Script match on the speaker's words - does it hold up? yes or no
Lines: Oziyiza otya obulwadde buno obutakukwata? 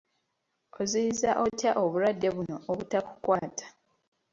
yes